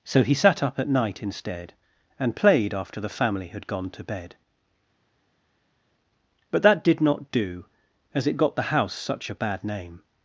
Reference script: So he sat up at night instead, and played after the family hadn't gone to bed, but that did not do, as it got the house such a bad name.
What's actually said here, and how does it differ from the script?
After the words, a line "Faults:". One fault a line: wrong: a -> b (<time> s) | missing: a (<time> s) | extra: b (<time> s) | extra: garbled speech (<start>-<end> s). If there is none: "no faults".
So he sat up at night instead, and played after the family had gone to bed, but that did not do, as it got the house such a bad name.
Faults:
wrong: hadn't -> had (3.5 s)